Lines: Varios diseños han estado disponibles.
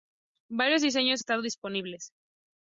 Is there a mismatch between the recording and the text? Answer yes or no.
yes